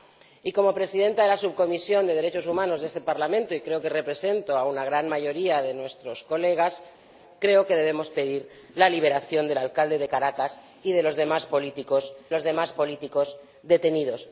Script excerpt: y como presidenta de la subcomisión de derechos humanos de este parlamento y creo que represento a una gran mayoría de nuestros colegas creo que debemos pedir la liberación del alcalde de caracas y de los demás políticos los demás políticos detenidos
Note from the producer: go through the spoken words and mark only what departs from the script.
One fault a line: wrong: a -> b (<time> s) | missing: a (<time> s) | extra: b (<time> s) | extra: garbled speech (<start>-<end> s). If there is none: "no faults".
no faults